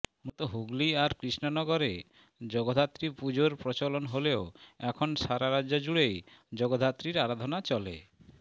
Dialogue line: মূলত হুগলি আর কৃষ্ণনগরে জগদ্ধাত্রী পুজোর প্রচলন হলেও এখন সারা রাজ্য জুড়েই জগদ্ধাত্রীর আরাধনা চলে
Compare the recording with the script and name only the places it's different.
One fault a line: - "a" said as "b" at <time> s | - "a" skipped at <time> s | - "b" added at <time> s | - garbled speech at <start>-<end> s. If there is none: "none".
none